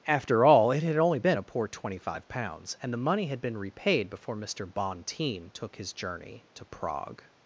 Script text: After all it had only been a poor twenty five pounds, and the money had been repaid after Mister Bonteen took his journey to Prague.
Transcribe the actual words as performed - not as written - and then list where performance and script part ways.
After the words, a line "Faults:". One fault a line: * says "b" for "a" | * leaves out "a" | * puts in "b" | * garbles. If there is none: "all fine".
After all it had only been a poor twenty five pounds, and the money had been repaid before Mister Bonteen took his journey to Prague.
Faults:
* says "before" for "after"